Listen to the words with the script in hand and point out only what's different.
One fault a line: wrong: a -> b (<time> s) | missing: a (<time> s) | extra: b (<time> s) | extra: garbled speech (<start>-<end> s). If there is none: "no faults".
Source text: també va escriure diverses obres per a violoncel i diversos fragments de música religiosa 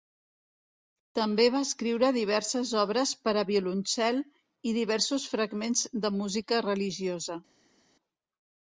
no faults